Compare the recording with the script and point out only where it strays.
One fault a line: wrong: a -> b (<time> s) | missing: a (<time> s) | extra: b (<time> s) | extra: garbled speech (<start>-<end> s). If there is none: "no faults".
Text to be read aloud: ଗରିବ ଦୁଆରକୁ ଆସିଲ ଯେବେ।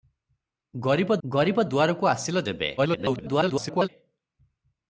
extra: ଗରିବ (1.2 s)
extra: garbled speech (2.8-3.9 s)